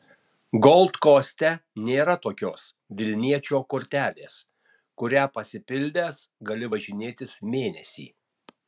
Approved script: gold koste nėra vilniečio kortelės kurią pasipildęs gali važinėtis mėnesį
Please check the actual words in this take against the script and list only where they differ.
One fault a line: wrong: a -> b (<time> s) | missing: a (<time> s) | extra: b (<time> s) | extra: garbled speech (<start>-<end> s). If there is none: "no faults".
extra: tokios (2.2 s)